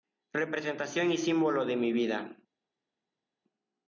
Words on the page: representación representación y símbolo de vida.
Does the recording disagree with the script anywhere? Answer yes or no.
yes